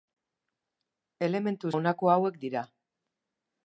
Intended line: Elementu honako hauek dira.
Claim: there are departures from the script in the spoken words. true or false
false